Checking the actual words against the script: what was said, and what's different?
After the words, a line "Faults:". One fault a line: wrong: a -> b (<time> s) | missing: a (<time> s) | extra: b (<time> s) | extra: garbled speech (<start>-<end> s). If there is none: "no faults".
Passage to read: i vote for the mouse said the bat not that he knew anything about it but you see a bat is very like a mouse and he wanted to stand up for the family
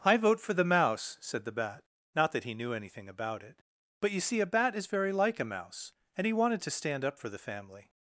i vote for the mouse said the bat not that he knew anything about it but you see a bat is very like a mouse and he wanted to stand up for the family
Faults:
no faults